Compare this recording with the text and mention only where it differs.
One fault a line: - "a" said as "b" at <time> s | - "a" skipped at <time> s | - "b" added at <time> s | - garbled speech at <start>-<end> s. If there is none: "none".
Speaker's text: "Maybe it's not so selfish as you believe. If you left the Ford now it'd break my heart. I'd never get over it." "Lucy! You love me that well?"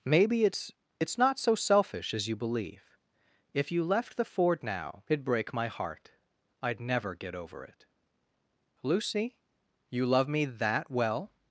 - "it's" added at 1.0 s